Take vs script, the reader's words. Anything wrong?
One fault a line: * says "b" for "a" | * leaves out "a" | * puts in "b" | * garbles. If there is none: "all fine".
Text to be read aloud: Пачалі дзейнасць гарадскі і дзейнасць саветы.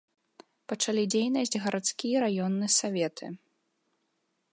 * says "раённы" for "дзейнасць"